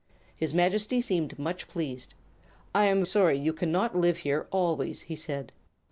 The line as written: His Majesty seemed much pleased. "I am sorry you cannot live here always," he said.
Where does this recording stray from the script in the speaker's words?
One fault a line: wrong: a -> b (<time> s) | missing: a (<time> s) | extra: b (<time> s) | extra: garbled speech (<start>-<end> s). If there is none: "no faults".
no faults